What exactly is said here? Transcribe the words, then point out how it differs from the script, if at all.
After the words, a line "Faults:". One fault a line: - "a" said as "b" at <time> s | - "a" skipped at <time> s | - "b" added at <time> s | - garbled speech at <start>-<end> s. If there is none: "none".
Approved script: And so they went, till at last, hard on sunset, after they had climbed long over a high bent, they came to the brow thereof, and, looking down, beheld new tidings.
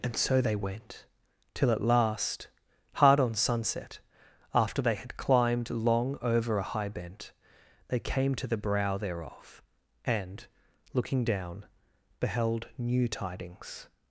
And so they went, till at last, hard on sunset, after they had climbed long over a high bent, they came to the brow thereof, and, looking down, beheld new tidings.
Faults:
none